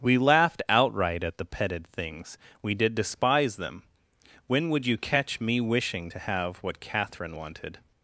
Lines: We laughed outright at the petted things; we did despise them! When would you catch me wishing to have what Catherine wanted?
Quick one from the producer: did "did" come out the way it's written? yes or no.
yes